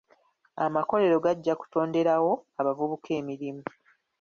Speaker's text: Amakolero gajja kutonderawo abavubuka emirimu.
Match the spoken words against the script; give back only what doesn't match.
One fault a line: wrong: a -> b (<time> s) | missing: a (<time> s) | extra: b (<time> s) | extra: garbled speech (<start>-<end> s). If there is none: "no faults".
no faults